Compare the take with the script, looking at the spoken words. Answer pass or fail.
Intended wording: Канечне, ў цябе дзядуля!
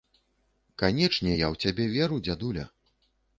fail